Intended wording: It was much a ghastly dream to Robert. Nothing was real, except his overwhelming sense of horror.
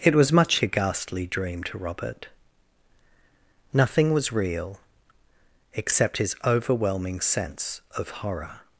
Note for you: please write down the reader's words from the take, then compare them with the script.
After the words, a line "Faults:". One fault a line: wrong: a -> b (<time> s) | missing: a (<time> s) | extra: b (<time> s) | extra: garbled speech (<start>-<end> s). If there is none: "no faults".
It was much a ghastly dream to Robert. Nothing was real, except his overwhelming sense of horror.
Faults:
no faults